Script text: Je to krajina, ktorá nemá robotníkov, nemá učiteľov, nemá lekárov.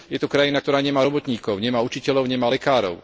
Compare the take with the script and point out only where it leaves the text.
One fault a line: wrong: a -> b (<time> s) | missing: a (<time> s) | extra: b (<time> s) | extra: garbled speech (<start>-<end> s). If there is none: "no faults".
no faults